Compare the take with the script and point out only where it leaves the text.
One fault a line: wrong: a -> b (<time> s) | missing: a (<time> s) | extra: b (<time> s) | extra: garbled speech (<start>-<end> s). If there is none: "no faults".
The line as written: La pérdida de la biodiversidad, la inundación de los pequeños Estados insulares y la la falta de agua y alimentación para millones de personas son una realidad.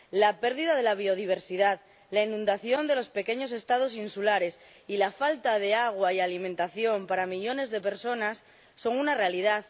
missing: la (5.1 s)